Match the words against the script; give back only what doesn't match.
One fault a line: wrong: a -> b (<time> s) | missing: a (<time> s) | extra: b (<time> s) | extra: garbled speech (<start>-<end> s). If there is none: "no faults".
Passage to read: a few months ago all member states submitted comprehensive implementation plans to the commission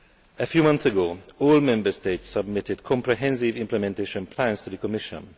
no faults